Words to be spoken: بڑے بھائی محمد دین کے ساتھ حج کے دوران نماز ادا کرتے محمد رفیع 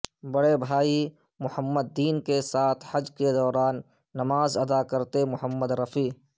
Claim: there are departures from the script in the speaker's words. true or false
false